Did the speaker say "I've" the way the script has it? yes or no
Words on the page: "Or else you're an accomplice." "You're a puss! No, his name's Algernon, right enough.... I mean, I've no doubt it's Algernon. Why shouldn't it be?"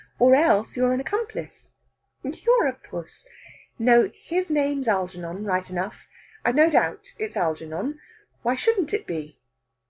no